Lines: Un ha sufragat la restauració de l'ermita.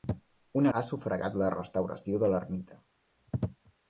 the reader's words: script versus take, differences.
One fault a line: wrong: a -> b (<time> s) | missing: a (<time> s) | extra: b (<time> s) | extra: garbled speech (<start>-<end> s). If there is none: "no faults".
no faults